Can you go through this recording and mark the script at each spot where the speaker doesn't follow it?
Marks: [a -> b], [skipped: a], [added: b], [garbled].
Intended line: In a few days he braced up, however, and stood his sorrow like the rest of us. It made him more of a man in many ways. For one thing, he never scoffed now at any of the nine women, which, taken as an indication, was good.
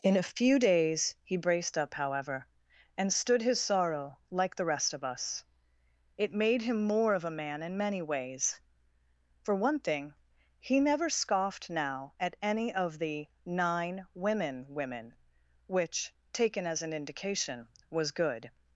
In a few days he braced up, however, and stood his sorrow like the rest of us. It made him more of a man in many ways. For one thing, he never scoffed now at any of the nine women, [added: women] which, taken as an indication, was good.